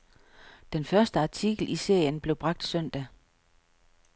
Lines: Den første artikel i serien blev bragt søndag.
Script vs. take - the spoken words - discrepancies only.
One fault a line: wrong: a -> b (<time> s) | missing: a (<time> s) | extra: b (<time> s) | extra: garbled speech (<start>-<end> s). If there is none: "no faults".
no faults